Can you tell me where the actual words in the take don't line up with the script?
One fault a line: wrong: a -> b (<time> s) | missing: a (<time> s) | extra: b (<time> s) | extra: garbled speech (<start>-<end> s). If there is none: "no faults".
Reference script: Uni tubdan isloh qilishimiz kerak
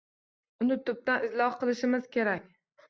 no faults